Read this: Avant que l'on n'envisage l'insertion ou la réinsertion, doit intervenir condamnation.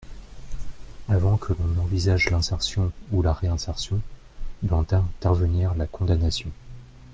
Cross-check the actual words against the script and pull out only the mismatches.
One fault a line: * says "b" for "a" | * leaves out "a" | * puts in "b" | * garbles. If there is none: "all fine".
* puts in "la"